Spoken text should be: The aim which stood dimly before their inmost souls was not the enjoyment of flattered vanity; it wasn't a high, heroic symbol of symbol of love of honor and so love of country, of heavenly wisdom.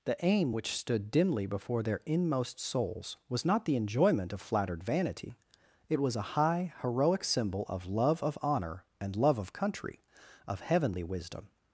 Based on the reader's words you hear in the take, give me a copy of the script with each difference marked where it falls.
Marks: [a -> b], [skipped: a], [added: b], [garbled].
The aim which stood dimly before their inmost souls was not the enjoyment of flattered vanity; it [wasn't -> was] a high, heroic symbol of [skipped: symbol of] love of honor and [skipped: so] love of country, of heavenly wisdom.